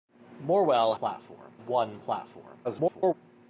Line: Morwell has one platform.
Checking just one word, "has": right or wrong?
wrong